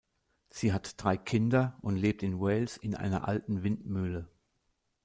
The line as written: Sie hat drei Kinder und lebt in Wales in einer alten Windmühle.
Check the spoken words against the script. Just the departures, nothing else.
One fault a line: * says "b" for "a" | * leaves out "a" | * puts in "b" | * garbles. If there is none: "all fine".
all fine